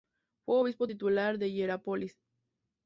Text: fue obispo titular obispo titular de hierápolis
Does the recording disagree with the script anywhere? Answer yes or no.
yes